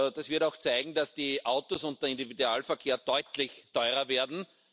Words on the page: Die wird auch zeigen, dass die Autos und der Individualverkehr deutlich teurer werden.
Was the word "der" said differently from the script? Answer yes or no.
no